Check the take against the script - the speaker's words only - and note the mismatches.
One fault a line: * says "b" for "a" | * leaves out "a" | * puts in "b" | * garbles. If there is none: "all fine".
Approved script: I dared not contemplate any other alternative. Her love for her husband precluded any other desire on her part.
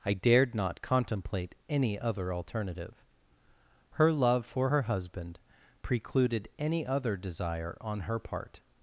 all fine